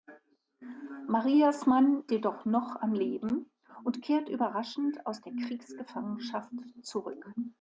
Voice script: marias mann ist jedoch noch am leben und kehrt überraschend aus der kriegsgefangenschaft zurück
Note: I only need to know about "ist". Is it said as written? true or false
false